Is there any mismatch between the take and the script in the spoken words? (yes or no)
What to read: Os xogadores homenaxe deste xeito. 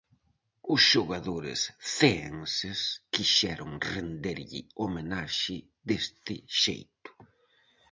yes